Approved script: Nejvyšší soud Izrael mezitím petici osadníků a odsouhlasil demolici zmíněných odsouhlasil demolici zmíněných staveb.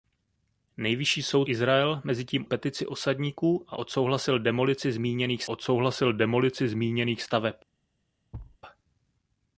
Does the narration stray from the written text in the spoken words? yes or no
no